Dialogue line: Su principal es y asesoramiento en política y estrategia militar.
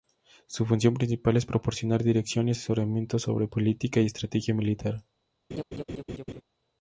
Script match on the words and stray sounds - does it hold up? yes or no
no